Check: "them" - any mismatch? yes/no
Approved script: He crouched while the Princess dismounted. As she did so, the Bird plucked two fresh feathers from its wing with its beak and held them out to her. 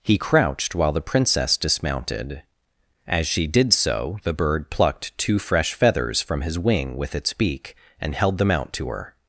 no